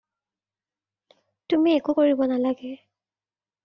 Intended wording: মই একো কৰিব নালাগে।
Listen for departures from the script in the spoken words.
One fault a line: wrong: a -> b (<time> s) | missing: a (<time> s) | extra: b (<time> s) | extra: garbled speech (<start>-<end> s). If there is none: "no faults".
wrong: মই -> তুমি (1.5 s)